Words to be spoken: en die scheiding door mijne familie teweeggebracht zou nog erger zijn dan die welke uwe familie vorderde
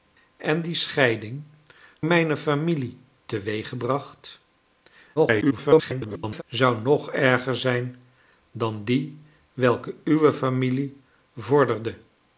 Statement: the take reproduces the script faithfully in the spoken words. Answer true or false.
false